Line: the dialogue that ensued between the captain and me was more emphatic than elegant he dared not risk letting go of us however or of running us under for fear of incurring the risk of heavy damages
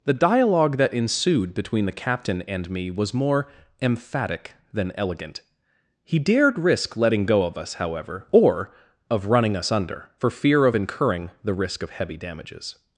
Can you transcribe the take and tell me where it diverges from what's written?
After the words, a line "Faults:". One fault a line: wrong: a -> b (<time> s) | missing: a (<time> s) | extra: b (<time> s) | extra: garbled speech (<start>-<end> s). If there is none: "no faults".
the dialogue that ensued between the captain and me was more emphatic than elegant he dared risk letting go of us however or of running us under for fear of incurring the risk of heavy damages
Faults:
missing: not (6.6 s)